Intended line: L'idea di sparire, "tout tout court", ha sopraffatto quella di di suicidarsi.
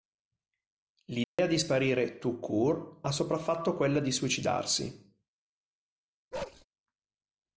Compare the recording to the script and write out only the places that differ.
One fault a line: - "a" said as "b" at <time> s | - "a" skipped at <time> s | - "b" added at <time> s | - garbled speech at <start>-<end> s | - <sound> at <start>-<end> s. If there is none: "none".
- dropout at 1.2-1.4 s
- "tout" skipped at 2.4 s
- "di" skipped at 4.1 s
- bark at 6.3-6.6 s